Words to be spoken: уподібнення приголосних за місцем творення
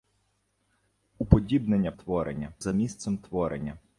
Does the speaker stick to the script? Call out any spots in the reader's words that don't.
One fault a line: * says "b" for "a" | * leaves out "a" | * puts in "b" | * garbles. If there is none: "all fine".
* says "творення" for "приголосних"